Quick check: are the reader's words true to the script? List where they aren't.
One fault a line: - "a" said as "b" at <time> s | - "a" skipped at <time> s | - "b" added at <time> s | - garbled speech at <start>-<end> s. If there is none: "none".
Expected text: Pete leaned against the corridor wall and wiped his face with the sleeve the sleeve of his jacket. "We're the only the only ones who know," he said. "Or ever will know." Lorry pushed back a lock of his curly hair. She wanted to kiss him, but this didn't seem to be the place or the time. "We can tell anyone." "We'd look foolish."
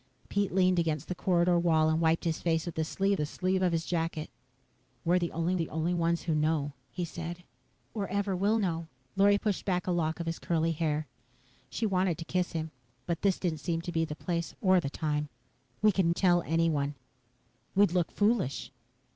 none